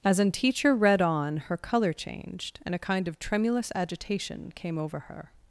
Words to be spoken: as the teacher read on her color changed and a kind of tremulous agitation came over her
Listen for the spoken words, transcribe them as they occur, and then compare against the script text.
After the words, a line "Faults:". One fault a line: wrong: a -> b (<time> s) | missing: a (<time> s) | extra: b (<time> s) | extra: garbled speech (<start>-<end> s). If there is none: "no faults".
as an teacher read on her color changed and a kind of tremulous agitation came over her
Faults:
wrong: the -> an (0.2 s)